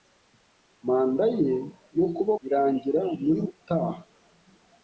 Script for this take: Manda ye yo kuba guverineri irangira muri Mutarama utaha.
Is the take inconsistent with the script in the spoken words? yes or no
yes